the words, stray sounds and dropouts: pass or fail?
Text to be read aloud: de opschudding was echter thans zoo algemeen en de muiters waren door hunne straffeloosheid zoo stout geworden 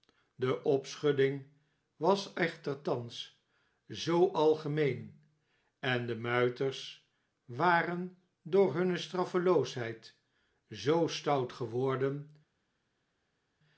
pass